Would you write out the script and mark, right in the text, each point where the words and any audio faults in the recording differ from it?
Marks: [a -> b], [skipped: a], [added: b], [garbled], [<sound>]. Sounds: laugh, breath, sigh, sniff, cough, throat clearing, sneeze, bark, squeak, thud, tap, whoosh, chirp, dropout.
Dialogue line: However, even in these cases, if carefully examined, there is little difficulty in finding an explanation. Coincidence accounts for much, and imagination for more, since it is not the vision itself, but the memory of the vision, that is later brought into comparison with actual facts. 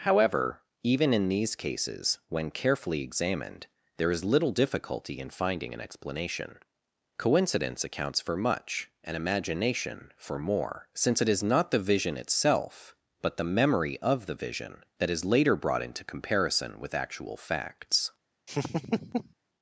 However, even in these cases, [if -> when] carefully examined, there is little difficulty in finding an explanation. Coincidence accounts for much, and imagination for more, since it is not the vision itself, but the memory of the vision, that is later brought into comparison with actual facts. [laugh]